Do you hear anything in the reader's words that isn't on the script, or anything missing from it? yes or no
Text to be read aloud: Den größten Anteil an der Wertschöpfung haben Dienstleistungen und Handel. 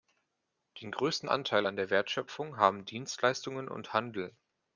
no